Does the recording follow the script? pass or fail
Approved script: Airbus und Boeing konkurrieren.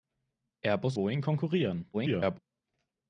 fail